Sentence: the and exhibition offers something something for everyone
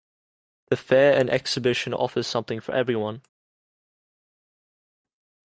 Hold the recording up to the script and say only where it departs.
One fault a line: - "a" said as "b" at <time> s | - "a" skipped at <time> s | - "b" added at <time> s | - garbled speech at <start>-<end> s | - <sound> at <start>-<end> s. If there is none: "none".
- "fair" added at 0.8 s
- "something" skipped at 2.6 s